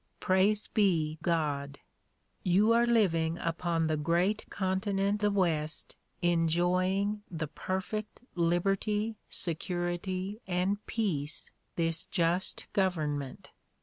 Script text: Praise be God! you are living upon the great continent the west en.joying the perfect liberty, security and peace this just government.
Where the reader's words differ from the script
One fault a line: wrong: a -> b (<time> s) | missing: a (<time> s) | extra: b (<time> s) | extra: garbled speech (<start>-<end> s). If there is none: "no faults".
no faults